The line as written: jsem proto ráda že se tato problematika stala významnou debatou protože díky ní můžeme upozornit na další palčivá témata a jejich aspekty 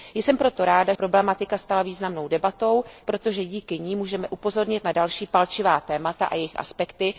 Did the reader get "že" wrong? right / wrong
wrong